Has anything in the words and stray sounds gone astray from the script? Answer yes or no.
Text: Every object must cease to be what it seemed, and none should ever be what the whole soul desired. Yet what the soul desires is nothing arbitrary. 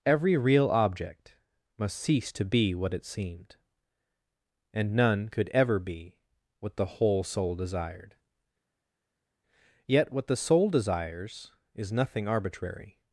yes